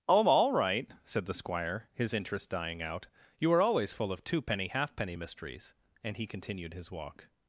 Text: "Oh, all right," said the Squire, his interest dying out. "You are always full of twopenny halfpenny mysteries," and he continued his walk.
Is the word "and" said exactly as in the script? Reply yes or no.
yes